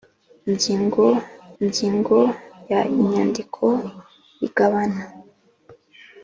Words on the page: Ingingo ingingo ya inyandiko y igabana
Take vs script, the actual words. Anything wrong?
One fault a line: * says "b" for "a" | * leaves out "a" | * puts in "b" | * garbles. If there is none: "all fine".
all fine